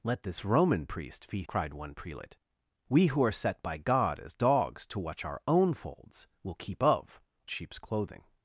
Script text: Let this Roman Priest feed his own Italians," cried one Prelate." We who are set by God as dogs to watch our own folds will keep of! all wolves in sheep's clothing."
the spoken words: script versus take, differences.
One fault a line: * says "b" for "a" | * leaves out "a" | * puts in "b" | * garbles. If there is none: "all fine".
* leaves out "his own Italians"
* leaves out "all wolves in"